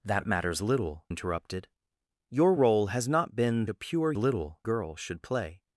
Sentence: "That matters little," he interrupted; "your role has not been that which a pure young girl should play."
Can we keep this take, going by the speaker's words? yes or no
no